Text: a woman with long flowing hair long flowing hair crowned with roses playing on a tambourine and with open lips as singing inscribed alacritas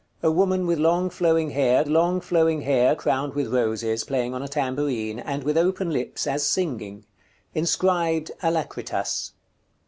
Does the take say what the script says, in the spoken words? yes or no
yes